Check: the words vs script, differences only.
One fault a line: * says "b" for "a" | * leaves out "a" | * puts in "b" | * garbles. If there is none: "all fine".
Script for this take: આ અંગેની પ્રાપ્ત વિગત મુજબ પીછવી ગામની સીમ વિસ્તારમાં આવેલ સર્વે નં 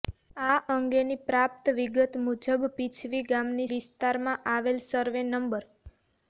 * leaves out "સીમ"